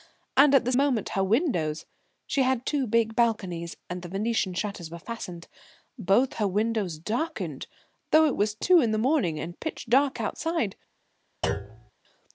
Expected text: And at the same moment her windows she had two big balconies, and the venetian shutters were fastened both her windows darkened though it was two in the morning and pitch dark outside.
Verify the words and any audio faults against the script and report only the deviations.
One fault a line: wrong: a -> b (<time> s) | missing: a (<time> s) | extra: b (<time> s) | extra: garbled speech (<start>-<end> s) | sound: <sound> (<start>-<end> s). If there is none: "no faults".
missing: same (0.7 s)
sound: thud (11.4-11.9 s)